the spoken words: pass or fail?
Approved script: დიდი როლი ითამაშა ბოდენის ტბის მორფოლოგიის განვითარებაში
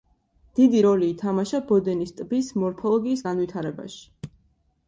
pass